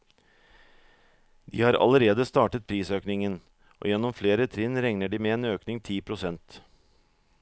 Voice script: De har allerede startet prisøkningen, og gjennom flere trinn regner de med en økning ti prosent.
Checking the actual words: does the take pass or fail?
pass